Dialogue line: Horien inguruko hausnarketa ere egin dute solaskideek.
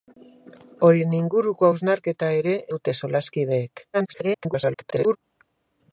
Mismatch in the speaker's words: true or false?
true